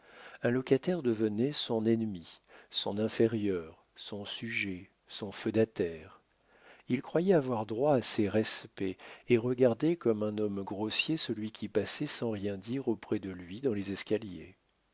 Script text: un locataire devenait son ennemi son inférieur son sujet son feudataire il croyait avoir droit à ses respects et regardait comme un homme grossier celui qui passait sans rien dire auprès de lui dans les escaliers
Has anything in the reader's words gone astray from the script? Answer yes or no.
no